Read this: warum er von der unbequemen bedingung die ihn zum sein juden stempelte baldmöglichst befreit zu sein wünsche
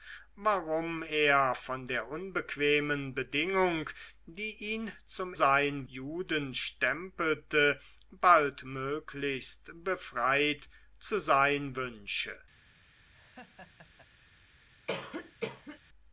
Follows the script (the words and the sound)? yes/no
no